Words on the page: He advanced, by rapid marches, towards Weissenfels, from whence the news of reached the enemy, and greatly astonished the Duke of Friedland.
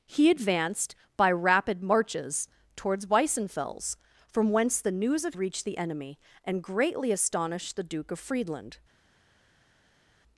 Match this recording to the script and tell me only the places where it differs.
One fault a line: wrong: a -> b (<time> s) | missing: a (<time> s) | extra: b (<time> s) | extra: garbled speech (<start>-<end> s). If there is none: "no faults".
no faults